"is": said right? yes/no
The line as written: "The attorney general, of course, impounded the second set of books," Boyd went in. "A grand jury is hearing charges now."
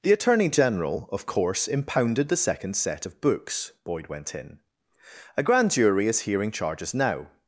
yes